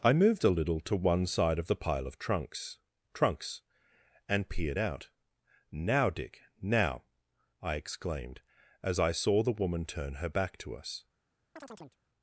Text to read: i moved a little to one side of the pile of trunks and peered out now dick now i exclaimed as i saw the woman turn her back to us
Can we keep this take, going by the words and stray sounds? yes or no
no